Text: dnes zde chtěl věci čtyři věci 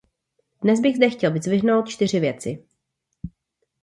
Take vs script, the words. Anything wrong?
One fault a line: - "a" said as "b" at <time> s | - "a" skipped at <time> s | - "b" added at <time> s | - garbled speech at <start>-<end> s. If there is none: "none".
- "bych" added at 0.8 s
- "věci" said as "vyzdvihnout" at 1.3 s